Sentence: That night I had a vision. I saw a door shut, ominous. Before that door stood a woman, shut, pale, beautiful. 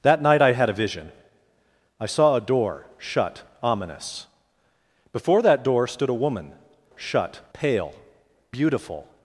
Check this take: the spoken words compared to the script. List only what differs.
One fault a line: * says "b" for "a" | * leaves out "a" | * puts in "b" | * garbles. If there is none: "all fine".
all fine